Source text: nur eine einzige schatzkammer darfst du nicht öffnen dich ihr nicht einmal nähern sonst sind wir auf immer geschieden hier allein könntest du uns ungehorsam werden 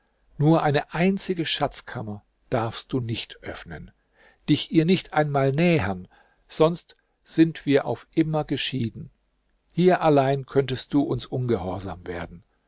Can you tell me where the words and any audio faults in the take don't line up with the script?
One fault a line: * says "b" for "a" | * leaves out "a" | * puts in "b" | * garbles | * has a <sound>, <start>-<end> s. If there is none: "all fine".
all fine